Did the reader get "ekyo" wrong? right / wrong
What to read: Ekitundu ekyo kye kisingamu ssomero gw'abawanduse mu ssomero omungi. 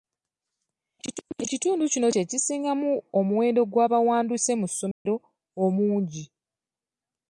wrong